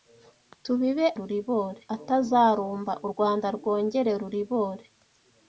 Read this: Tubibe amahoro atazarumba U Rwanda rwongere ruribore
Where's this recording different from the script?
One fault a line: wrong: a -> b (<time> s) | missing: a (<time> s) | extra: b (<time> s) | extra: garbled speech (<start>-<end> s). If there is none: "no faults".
wrong: amahoro -> ruribore (1.2 s)